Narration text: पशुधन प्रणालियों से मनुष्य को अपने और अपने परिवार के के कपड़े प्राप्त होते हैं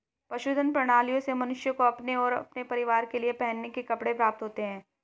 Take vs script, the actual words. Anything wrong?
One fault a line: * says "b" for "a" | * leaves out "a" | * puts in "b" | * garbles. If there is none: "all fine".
* puts in "लिए पहनने"